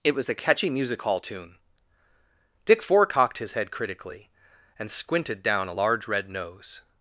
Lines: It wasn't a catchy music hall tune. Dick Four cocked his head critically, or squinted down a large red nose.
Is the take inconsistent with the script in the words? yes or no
yes